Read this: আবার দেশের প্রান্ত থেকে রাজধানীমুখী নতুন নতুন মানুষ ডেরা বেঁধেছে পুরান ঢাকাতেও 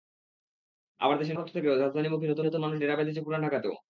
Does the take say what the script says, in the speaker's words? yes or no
yes